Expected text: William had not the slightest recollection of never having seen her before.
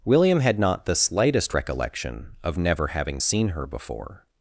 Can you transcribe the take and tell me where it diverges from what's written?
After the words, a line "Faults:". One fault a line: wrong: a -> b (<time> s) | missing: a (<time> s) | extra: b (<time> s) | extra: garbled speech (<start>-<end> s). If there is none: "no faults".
William had not the slightest recollection of never having seen her before.
Faults:
no faults